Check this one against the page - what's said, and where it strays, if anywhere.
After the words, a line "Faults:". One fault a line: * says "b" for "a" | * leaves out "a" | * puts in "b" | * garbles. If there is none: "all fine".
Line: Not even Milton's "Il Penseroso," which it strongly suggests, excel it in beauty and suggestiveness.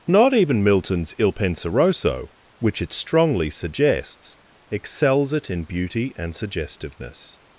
Not even Milton's "Il Penseroso," which it strongly suggests, excels it in beauty and suggestiveness.
Faults:
* says "excels" for "excel"